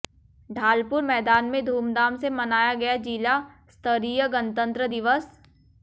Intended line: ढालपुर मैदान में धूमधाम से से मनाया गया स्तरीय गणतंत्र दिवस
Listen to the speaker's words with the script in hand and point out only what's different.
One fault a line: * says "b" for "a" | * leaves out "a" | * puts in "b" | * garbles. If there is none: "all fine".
* leaves out "से"
* puts in "जिला"